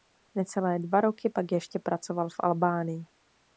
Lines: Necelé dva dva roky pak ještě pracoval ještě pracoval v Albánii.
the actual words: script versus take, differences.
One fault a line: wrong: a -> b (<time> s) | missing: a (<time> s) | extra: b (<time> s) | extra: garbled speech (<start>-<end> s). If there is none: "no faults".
missing: dva (1.0 s)
missing: ještě pracoval (2.3 s)